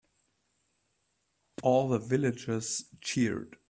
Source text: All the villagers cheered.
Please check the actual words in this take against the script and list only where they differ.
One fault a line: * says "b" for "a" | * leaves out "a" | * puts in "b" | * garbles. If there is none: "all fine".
all fine